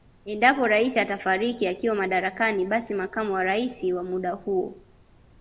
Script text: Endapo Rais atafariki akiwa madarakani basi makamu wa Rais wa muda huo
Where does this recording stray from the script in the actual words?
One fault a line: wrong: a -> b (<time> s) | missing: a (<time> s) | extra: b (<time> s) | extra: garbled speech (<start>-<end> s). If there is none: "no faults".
no faults